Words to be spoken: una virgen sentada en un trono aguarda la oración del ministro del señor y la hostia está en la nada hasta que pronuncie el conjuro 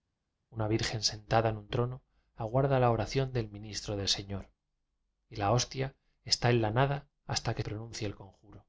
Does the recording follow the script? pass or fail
pass